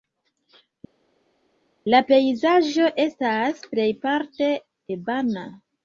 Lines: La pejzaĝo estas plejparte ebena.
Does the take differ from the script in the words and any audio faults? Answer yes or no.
no